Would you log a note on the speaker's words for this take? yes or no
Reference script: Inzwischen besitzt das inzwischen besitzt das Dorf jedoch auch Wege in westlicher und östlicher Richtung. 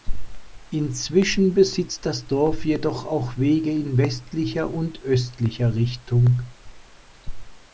yes